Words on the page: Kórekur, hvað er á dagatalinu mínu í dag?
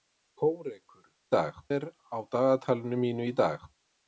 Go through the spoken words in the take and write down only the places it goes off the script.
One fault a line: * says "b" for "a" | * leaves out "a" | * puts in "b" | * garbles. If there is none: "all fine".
* says "dag" for "hvað"